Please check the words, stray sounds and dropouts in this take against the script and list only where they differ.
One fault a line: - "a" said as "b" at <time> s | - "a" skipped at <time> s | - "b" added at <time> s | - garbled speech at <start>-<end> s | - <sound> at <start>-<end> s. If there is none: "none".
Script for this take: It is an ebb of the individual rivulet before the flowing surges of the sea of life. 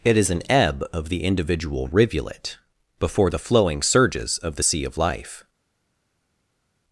none